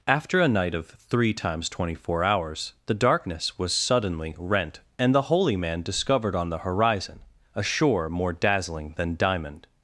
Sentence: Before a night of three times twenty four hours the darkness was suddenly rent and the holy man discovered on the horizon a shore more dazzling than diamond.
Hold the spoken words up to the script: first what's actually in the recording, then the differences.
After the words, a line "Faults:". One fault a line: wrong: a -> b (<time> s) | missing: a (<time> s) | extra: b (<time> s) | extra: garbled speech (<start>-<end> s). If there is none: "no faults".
After a night of three times twenty four hours the darkness was suddenly rent and the holy man discovered on the horizon a shore more dazzling than diamond.
Faults:
wrong: Before -> After (0.1 s)